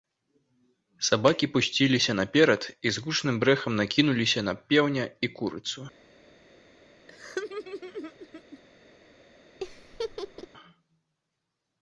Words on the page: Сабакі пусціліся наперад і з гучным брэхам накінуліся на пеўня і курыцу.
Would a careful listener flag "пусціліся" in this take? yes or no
no